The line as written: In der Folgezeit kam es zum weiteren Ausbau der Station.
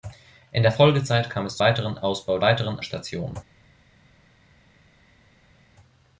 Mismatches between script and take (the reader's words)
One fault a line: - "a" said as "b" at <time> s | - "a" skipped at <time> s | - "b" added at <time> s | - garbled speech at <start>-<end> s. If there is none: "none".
- "zum" skipped at 1.6 s
- "der" said as "weiteren" at 2.4 s